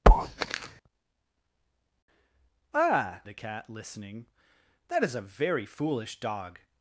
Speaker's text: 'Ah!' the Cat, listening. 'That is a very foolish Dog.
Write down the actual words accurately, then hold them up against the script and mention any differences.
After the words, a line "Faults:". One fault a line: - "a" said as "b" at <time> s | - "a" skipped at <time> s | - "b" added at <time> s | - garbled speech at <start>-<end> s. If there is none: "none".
'Ah!' the Cat, listening. 'That is a very foolish Dog.
Faults:
none